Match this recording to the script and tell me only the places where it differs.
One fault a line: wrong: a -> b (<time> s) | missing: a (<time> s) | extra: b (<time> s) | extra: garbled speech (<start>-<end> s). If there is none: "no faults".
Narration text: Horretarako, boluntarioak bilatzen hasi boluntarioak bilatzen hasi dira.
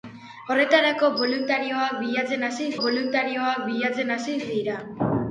no faults